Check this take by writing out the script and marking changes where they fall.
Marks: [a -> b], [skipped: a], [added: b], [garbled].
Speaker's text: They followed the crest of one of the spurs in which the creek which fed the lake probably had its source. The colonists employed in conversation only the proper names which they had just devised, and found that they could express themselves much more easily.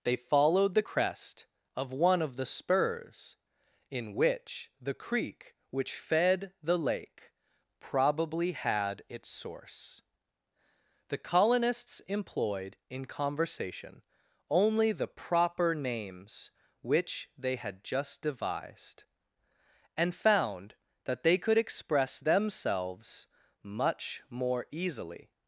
They followed the crest of one of the spurs in which the creek which fed the lake probably had its source. The colonists employed in conversation only the proper names which they had just devised, and found that they could express themselves much more easily.